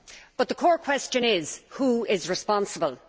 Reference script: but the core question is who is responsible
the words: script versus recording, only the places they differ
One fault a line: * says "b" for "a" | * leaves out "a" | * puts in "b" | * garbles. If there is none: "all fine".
all fine